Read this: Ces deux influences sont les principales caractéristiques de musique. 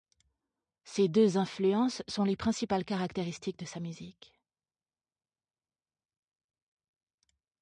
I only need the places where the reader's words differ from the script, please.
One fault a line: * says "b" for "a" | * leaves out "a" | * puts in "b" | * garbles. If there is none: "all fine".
* puts in "sa"